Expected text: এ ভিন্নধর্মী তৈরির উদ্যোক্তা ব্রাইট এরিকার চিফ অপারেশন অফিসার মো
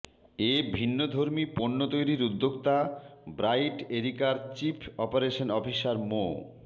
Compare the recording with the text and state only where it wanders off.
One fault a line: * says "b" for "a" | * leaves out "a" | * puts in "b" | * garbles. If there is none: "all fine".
* puts in "পণ্য"